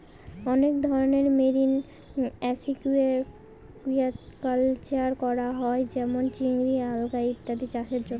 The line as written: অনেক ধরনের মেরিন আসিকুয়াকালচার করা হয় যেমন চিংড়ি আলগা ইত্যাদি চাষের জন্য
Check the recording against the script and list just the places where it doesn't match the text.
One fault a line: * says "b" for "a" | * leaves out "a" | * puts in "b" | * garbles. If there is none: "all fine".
all fine